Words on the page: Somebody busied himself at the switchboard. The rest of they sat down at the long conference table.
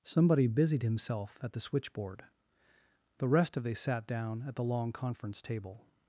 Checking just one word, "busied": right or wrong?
right